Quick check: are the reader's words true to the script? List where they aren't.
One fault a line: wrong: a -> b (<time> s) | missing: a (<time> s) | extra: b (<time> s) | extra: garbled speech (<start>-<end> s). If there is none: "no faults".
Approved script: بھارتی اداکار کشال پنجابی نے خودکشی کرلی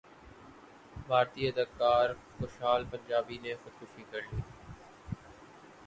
no faults